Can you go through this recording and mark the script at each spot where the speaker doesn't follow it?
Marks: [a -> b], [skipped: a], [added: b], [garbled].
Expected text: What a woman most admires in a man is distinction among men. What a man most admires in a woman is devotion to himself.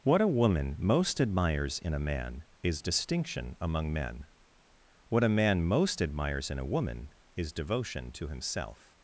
What a woman most admires in a man is distinction among men. What a man most admires in a woman is devotion to himself.